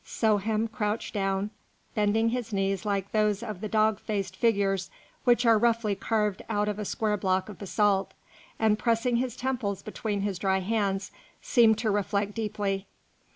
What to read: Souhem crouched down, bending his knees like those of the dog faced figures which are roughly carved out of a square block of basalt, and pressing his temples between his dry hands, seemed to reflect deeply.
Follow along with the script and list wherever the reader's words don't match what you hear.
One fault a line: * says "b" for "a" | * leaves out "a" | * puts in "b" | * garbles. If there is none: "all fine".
all fine